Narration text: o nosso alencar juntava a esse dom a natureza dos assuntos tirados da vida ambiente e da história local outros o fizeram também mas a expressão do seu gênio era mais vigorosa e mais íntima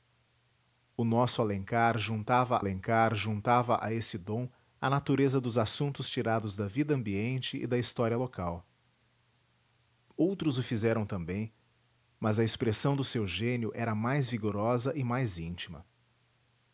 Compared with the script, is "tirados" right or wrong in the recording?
right